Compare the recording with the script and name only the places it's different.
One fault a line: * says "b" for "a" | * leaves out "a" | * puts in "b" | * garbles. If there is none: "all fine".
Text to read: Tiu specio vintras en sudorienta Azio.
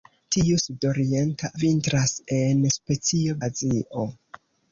* says "sudorienta" for "specio"
* says "specio" for "sudorienta"